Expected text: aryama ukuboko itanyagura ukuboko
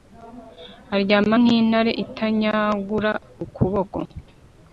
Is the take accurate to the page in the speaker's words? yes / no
no